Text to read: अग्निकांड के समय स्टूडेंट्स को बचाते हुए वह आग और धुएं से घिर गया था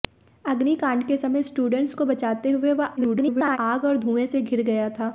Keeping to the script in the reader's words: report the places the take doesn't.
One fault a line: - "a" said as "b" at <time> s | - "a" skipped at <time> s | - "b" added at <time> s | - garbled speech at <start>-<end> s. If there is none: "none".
- garbled speech at 3.0-3.6 s